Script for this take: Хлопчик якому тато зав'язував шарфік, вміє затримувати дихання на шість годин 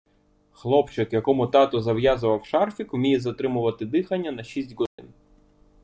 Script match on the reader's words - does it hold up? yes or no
yes